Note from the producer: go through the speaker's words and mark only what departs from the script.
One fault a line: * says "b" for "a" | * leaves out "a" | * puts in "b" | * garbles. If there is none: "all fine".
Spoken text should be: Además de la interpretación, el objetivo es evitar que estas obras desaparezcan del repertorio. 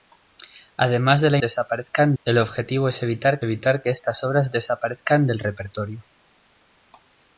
* says "desaparezcan" for "interpretación"
* puts in "evitar"